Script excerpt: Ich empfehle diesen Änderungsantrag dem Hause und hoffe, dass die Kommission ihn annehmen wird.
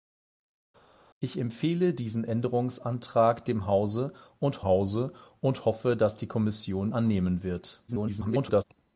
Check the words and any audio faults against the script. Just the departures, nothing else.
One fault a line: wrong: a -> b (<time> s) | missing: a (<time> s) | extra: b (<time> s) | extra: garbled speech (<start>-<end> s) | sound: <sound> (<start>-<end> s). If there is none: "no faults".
extra: Hause und (4.6 s)
missing: ihn (6.9 s)
extra: garbled speech (7.9-8.6 s)